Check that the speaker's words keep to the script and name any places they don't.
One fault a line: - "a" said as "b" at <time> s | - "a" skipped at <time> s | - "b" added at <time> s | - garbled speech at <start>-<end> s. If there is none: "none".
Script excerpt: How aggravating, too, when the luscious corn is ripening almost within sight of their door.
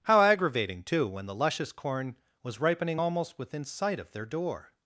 - "is" said as "was" at 2.4 s